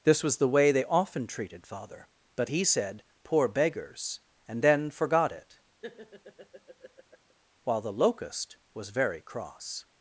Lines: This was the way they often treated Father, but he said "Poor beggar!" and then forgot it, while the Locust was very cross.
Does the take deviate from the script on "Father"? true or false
false